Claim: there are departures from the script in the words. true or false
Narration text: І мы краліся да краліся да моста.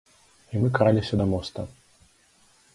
true